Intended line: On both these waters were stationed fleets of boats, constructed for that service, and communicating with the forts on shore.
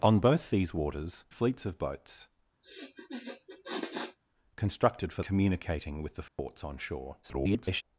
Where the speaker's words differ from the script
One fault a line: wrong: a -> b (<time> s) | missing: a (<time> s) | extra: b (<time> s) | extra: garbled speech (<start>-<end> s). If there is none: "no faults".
missing: were stationed (1.2 s)
missing: that service and (5.2 s)
extra: garbled speech (7.2-7.8 s)